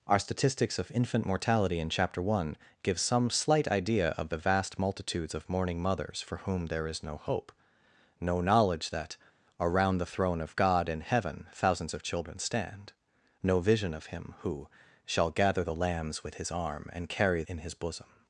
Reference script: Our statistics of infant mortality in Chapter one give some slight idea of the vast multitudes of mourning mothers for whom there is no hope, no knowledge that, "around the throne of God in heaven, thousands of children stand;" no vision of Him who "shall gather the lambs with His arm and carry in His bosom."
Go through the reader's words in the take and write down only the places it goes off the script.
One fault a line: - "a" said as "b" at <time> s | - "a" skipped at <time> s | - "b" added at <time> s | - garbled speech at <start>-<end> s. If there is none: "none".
none